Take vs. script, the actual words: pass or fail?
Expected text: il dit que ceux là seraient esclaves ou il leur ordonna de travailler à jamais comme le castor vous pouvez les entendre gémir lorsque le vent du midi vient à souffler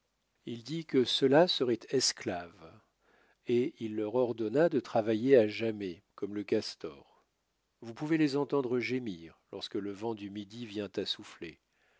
fail